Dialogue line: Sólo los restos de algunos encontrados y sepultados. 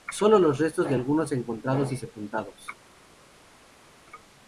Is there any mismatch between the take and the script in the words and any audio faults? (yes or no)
no